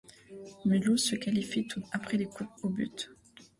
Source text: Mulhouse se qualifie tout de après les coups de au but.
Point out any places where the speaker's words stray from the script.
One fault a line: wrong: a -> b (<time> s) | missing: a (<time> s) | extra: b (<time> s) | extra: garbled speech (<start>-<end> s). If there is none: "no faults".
no faults